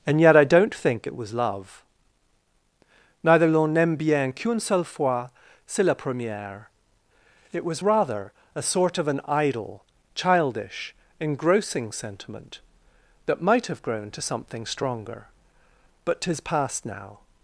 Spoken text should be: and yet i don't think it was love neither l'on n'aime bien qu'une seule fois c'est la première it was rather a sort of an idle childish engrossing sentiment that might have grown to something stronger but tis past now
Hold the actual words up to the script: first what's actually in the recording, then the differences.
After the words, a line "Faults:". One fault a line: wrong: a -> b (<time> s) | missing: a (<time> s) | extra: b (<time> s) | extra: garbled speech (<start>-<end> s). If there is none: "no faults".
and yet i don't think it was love neither l'on n'aime bien qu'une seule fois c'est la première it was rather a sort of an idle childish engrossing sentiment that might have grown to something stronger but tis past now
Faults:
no faults